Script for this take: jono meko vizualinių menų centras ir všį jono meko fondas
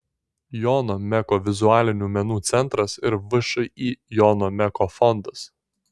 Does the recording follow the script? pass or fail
pass